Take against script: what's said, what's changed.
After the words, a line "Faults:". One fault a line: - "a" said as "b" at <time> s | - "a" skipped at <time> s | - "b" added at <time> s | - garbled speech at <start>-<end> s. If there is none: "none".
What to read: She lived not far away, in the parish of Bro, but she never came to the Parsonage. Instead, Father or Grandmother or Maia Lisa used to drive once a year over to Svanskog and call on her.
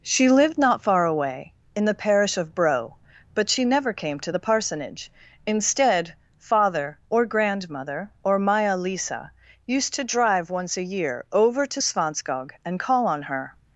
She lived not far away, in the parish of Bro, but she never came to the Parsonage. Instead, Father or Grandmother or Maia Lisa used to drive once a year over to Svanskog and call on her.
Faults:
none